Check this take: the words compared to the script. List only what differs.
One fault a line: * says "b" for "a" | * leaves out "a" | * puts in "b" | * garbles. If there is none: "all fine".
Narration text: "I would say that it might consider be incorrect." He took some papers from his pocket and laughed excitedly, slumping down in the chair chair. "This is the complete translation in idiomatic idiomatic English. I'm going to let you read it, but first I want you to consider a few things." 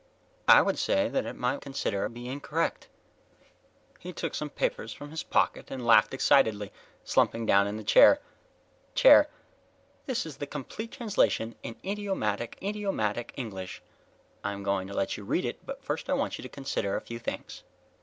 all fine